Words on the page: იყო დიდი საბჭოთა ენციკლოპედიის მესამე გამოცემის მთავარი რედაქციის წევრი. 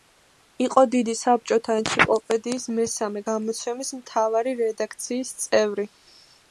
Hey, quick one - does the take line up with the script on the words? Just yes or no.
yes